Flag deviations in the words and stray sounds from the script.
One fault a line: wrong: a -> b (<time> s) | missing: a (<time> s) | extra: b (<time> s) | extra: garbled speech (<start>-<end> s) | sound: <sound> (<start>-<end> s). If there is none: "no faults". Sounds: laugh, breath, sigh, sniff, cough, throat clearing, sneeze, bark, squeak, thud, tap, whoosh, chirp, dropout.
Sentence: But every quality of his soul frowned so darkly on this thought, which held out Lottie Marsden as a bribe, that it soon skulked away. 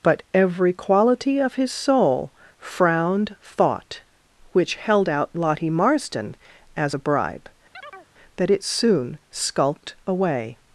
missing: so darkly on this (3.4 s)
sound: chirp (7.7-8.1 s)